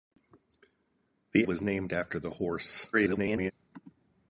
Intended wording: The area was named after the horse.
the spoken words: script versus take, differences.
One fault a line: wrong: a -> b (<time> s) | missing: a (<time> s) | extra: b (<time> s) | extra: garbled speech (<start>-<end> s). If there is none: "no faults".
missing: area (1.4 s)
extra: garbled speech (2.9-3.5 s)